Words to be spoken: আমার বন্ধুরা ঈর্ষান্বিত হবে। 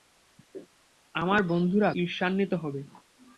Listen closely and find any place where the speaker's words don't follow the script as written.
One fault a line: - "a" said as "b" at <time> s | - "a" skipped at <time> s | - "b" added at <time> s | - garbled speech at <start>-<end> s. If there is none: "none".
none